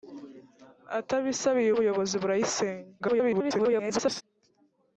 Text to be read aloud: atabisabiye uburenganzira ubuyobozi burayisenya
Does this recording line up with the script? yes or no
no